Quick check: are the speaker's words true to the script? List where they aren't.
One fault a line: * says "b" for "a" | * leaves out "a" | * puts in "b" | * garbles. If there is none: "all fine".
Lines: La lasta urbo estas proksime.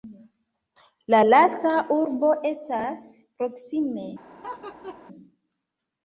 all fine